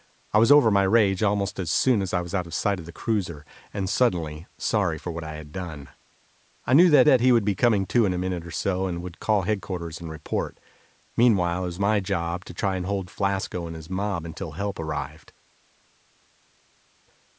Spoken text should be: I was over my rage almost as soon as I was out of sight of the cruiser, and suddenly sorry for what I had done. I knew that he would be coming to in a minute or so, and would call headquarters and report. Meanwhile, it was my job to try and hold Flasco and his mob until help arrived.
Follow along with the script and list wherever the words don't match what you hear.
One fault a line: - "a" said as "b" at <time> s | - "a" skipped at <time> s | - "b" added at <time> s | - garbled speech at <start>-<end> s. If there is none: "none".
- "that" added at 7.0 s